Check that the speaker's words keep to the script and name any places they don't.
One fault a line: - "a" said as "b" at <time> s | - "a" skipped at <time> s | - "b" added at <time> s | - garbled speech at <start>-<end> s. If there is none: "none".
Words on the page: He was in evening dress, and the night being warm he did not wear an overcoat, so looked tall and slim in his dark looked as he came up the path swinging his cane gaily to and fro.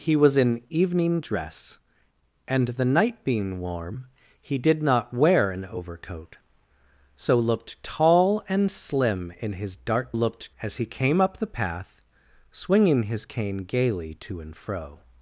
none